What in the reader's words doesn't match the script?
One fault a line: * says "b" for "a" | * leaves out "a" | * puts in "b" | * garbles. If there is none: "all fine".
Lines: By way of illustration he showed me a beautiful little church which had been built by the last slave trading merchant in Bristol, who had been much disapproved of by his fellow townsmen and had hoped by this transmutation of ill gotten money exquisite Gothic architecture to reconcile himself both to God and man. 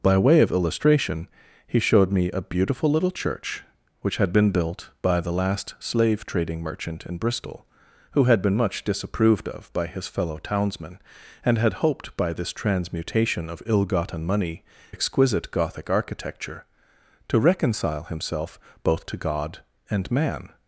all fine